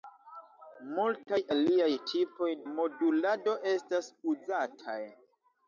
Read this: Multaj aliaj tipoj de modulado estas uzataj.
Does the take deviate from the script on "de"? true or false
true